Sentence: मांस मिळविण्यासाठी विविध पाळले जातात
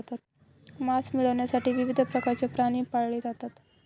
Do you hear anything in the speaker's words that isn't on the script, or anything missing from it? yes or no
yes